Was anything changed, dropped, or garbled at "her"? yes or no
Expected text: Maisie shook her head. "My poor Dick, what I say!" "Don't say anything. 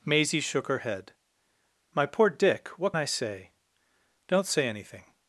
no